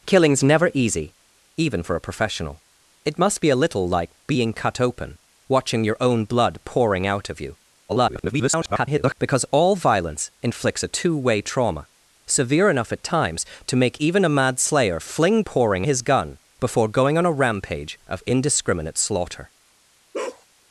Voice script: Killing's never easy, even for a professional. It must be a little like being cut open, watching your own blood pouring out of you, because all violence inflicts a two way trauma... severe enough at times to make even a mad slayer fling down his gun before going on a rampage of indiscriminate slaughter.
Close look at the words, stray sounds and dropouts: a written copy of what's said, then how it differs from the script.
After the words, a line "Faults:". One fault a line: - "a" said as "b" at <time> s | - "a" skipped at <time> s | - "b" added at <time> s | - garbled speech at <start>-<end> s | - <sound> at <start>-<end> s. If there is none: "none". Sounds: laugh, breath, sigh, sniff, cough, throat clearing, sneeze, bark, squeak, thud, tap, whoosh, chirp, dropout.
Killing's never easy, even for a professional. It must be a little like being cut open, watching your own blood pouring out of you, [garbled] because all violence inflicts a two way trauma... severe enough at times to make even a mad slayer fling pouring his gun before going on a rampage of indiscriminate slaughter.
Faults:
- garbled speech at 7.9-9.1 s
- "down" said as "pouring" at 15.4 s
- bark at 20.1-20.5 s